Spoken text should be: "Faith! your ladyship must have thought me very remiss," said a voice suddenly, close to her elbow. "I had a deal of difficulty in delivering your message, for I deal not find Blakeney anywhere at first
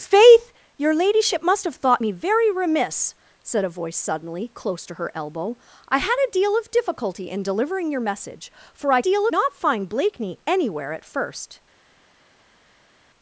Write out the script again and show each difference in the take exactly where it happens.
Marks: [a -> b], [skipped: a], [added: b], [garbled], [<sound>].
"Faith! your ladyship must have thought me very remiss," said a voice suddenly, close to her elbow. "I had a deal of difficulty in delivering your message, for I deal not find Blakeney anywhere at first